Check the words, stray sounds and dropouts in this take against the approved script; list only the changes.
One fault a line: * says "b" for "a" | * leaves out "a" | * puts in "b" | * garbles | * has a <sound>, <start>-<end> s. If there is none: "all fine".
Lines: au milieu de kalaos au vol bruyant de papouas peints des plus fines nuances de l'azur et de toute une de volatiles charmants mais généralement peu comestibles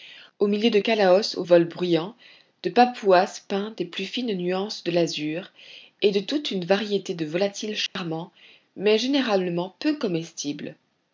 * puts in "variété"
* has a dropout, 7.9-8.0 s